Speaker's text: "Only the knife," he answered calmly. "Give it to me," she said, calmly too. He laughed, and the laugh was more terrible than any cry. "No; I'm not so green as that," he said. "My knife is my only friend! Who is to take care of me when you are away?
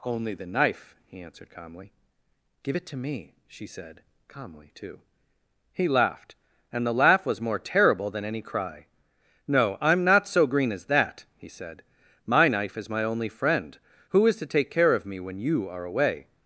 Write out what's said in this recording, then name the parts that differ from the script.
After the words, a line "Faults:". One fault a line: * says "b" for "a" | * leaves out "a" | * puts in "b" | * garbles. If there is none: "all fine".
"Only the knife," he answered calmly. "Give it to me," she said, calmly too. He laughed, and the laugh was more terrible than any cry. "No; I'm not so green as that," he said. "My knife is my only friend! Who is to take care of me when you are away?
Faults:
all fine